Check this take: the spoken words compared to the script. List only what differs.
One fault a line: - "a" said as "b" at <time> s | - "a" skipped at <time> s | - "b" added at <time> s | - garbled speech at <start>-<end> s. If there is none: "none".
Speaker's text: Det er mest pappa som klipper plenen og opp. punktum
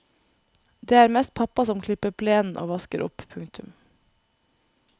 - "vasker" added at 2.7 s